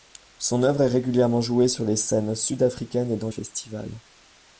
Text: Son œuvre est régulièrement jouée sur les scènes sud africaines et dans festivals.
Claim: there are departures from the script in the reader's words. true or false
false